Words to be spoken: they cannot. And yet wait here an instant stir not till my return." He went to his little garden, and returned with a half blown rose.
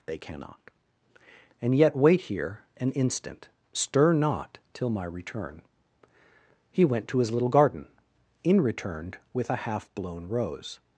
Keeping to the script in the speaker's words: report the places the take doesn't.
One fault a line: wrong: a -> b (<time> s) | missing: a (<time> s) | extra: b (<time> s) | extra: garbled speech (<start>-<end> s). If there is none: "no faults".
wrong: and -> in (8.4 s)